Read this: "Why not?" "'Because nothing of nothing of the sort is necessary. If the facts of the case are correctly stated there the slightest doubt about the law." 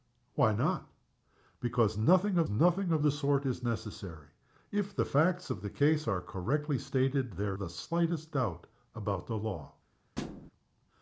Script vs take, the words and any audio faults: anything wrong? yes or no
yes